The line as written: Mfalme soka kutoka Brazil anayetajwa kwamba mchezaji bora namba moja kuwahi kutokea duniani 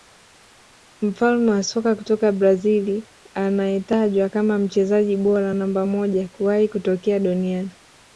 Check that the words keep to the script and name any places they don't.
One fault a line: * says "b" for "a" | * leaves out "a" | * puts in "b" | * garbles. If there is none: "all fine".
* puts in "wa"
* says "kama" for "kwamba"